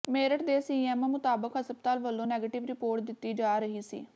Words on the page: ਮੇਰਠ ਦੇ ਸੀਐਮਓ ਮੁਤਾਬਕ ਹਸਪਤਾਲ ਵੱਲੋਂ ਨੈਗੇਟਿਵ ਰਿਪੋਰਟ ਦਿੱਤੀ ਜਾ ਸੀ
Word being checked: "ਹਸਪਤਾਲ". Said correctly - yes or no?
yes